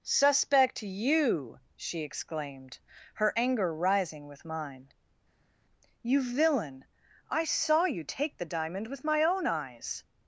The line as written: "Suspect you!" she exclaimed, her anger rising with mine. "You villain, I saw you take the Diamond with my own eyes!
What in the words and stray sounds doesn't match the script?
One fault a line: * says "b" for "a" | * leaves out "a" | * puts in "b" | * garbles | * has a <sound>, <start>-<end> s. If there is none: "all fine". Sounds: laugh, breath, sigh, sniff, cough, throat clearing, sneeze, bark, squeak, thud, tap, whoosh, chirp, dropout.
all fine